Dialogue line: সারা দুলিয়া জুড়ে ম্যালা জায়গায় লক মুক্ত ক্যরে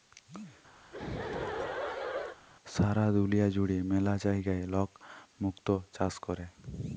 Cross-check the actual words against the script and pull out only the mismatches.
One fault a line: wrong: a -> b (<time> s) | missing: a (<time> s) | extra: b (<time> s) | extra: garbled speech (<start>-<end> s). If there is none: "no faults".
extra: চাষ (6.0 s)